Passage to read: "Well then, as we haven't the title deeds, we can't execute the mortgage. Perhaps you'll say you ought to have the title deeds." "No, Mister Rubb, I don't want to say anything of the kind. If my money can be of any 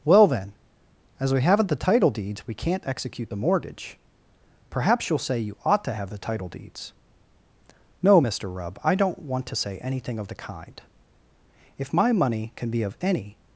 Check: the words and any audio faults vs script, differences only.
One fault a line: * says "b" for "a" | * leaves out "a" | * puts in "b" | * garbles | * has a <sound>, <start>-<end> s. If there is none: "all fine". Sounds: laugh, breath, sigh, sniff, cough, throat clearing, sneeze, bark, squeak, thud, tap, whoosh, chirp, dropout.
all fine